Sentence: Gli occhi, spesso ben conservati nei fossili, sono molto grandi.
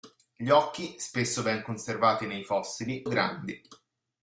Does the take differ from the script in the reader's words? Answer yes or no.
yes